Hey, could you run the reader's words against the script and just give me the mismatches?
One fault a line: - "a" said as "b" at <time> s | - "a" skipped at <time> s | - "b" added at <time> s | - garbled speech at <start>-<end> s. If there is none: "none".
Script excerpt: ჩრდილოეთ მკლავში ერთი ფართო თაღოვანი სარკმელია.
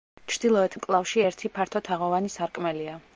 none